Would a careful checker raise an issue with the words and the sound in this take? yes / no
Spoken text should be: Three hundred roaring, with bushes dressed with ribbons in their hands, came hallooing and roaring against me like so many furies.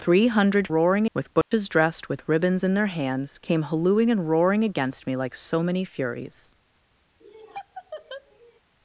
yes